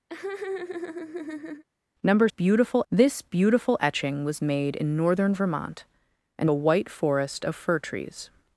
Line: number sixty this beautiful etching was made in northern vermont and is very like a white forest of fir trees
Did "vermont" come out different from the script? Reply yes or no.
no